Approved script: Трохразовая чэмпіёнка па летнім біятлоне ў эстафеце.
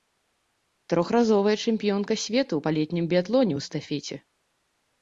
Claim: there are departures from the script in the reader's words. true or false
true